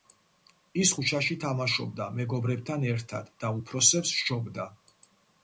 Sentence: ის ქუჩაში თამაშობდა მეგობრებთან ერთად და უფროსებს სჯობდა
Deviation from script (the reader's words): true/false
false